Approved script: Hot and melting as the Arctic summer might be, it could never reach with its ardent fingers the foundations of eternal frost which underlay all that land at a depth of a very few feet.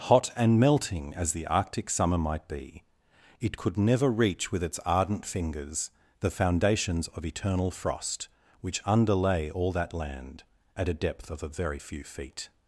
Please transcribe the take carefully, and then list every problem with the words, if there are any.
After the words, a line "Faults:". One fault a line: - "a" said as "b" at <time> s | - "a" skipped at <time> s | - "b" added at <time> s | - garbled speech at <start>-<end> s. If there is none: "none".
Hot and melting as the Arctic summer might be, it could never reach with its ardent fingers the foundations of eternal frost which underlay all that land at a depth of a very few feet.
Faults:
none